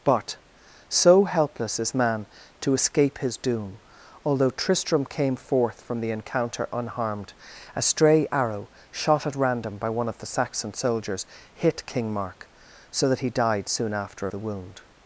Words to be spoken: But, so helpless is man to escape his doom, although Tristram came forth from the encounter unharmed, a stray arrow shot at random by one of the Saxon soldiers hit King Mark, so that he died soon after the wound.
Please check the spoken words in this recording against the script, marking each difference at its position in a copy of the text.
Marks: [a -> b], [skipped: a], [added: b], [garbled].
But, so helpless is man to escape his doom, although Tristram came forth from the encounter unharmed, a stray arrow shot at random by one of the Saxon soldiers hit King Mark, so that he died soon after the wound.